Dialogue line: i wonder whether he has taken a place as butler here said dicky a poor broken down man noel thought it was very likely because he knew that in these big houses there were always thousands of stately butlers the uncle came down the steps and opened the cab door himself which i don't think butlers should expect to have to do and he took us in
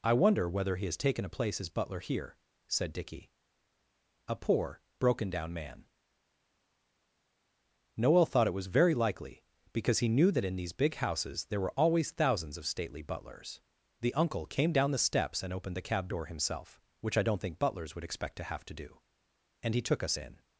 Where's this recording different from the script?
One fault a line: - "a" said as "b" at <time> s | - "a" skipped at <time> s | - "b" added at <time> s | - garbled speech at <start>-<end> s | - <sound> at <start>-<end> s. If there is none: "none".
- "should" said as "would" at 17.9 s